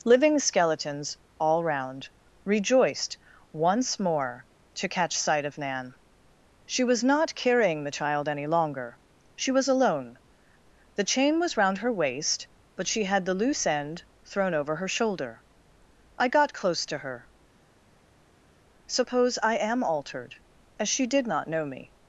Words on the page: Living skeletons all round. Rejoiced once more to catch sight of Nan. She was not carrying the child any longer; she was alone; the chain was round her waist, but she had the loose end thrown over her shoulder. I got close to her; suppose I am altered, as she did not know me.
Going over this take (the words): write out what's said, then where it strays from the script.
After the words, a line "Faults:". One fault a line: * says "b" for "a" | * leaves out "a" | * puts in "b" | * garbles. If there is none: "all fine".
Living skeletons all round. Rejoiced once more to catch sight of Nan. She was not carrying the child any longer; she was alone; the chain was round her waist, but she had the loose end thrown over her shoulder. I got close to her; suppose I am altered, as she did not know me.
Faults:
all fine